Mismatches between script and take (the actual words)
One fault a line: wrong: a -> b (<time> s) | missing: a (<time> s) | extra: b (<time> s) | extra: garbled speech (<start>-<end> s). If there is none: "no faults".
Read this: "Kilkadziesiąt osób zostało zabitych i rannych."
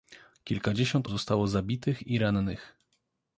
missing: osób (1.1 s)